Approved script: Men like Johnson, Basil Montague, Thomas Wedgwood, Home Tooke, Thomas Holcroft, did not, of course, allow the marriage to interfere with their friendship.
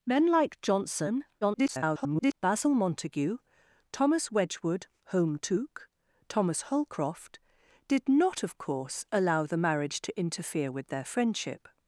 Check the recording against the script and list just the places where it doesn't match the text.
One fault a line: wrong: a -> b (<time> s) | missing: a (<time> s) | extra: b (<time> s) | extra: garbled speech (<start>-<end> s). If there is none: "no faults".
extra: garbled speech (1.4-2.3 s)